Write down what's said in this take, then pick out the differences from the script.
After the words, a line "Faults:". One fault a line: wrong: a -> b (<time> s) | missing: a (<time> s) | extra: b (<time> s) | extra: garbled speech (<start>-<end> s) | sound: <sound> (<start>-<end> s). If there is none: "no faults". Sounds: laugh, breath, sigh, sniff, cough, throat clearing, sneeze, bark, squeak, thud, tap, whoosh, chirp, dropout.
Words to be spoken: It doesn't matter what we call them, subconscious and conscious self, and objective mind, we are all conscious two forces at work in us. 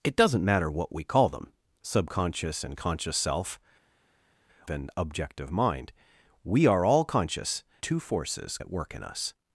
It doesn't matter what we call them, subconscious and conscious self, and objective mind, we are all conscious two forces at work in us.
Faults:
no faults